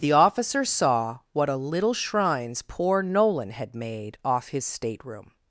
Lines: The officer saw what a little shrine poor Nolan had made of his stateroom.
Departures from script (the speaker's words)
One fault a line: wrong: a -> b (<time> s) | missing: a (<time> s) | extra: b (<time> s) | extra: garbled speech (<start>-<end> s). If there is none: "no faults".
wrong: shrine -> shrines (1.9 s)
wrong: of -> off (4.2 s)